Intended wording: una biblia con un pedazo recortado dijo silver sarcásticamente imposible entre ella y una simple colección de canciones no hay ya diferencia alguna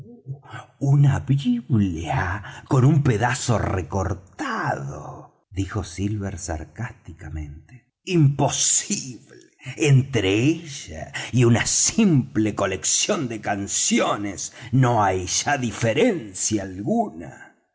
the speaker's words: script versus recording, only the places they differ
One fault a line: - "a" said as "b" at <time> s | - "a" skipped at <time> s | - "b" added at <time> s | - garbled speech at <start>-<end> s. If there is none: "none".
none